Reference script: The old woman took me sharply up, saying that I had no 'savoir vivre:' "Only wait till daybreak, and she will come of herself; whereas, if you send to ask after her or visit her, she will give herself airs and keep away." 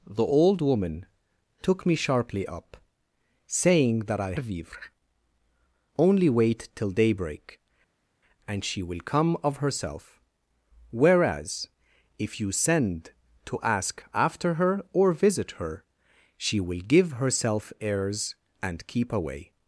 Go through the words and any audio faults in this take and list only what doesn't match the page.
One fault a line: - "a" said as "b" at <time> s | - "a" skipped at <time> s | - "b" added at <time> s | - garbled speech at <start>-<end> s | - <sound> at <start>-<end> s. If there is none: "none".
- "had no savoir" skipped at 4.3 s